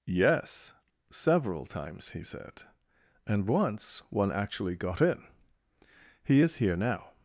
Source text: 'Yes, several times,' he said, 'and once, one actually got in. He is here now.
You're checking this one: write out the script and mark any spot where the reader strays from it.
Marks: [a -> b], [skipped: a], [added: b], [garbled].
'Yes, several times,' he said, 'and once, one actually got in. He is here now.